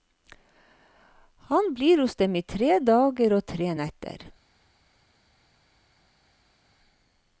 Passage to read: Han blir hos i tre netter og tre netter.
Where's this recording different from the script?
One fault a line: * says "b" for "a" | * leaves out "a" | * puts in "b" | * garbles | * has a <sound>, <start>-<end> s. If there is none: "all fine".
* puts in "dem"
* says "dager" for "netter"